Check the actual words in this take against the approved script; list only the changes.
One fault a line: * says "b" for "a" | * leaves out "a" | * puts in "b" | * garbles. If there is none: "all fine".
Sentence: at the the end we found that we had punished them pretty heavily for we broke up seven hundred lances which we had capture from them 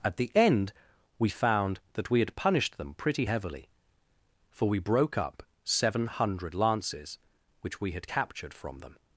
* leaves out "the"
* says "captured" for "capture"